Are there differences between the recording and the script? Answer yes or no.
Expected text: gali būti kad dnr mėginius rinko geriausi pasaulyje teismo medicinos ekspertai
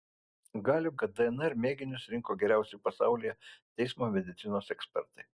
yes